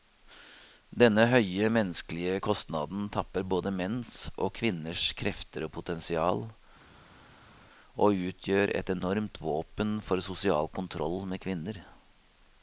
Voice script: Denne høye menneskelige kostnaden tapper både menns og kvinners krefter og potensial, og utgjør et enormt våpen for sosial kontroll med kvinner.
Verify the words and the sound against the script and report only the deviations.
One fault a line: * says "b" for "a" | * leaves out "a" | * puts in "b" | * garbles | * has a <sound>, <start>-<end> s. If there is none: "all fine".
all fine